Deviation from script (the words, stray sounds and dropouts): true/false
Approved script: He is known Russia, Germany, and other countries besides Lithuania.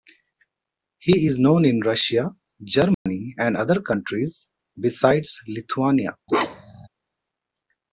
true